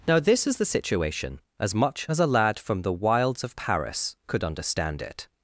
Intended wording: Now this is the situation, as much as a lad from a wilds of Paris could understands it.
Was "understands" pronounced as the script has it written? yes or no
no